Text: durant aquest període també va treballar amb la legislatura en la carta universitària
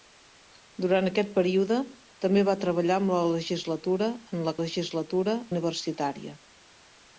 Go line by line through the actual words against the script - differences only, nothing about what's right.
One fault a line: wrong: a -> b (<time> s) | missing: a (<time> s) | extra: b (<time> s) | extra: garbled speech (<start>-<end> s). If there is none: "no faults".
wrong: carta -> legislatura (4.6 s)